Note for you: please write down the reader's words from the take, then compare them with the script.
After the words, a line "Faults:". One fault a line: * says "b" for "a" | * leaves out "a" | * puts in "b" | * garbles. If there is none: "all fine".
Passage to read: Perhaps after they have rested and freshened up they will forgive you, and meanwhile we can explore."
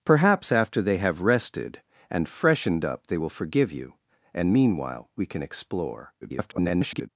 Perhaps after they have rested and freshened up they will forgive you, and meanwhile we can explore." [garbled]
Faults:
* garbles